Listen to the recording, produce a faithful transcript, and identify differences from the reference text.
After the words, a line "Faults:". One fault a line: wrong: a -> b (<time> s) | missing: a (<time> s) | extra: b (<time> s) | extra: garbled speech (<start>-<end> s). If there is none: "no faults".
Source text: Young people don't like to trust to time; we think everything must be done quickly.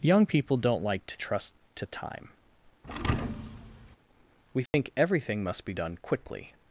Young people don't like to trust to time; we think everything must be done quickly.
Faults:
no faults